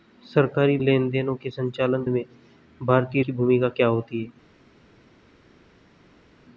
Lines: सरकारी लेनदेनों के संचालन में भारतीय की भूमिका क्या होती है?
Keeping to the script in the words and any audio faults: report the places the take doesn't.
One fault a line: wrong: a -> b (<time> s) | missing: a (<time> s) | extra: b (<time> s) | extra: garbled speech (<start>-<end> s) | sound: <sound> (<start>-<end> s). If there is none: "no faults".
no faults